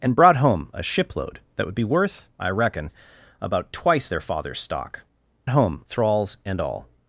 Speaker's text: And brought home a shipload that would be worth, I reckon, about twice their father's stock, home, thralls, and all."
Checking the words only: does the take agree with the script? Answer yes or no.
yes